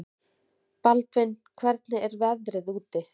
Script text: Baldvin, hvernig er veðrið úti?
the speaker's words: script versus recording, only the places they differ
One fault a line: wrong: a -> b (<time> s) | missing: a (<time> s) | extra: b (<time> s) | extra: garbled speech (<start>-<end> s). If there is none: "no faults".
no faults